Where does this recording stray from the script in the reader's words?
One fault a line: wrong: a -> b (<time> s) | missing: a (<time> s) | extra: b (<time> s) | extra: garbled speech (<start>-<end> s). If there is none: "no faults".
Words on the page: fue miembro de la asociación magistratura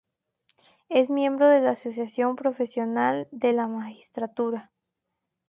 wrong: fue -> es (0.9 s)
extra: profesional de la (2.4 s)